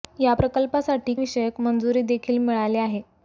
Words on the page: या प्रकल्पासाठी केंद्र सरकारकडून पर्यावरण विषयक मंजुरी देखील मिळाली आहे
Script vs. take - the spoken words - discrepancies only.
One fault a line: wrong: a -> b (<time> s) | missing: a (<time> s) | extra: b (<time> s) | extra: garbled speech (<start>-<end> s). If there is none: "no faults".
missing: केंद्र सरकारकडून पर्यावरण (1.1 s)